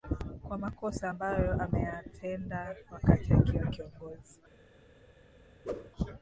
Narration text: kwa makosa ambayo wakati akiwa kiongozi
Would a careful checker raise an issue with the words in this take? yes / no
yes